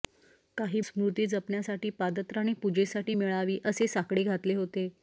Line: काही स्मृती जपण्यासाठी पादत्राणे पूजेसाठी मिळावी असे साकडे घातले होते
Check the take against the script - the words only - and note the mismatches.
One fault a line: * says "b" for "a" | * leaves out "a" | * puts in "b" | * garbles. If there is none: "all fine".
all fine